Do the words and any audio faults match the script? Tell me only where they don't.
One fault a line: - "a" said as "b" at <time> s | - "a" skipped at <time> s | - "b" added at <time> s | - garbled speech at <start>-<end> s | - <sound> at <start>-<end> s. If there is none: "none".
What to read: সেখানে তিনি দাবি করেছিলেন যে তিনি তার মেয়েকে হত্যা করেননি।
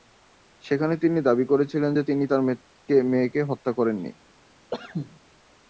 - cough at 4.7-5.2 s